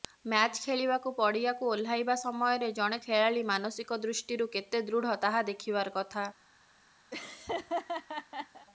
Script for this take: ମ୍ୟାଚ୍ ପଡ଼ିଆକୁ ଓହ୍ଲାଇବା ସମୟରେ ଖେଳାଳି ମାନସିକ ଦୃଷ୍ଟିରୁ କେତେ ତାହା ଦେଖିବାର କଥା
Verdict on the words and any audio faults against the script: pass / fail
fail